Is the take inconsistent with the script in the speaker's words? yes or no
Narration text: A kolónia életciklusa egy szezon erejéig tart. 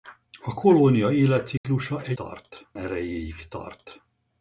yes